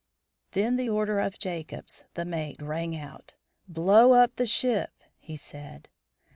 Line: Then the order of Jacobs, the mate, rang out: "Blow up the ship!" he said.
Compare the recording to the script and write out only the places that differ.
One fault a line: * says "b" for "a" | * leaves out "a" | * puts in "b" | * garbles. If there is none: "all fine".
all fine